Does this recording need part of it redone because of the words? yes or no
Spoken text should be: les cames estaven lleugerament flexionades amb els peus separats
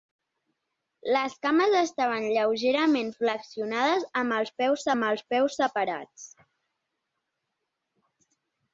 yes